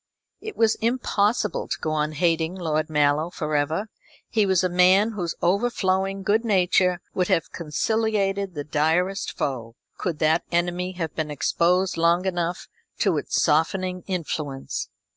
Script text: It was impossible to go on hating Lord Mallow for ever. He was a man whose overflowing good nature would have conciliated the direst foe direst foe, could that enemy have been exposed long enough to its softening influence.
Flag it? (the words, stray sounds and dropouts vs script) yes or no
yes